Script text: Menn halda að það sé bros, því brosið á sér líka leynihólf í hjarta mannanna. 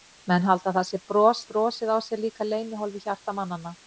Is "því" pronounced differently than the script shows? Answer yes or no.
yes